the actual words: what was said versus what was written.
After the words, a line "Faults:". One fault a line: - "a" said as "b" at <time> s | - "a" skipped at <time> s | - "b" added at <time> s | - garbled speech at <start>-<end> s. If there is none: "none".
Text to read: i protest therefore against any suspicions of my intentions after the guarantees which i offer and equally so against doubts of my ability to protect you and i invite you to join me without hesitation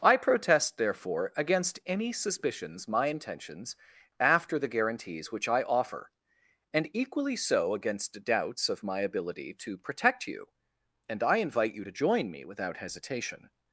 i protest therefore against any suspicions my intentions after the guarantees which i offer and equally so against doubts of my ability to protect you and i invite you to join me without hesitation
Faults:
- "of" skipped at 2.9 s